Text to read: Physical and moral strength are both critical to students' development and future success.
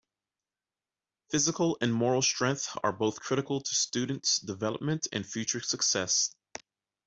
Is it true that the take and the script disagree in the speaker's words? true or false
false